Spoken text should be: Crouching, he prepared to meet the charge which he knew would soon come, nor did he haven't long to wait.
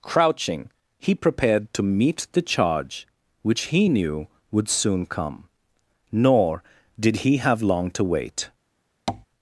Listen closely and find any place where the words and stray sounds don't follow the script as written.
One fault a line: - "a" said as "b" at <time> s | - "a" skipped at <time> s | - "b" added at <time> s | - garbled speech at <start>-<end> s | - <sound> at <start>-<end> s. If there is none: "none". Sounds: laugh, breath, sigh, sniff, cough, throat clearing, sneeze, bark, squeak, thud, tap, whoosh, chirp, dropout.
- "haven't" said as "have" at 7.4 s
- tap at 9.1-9.3 s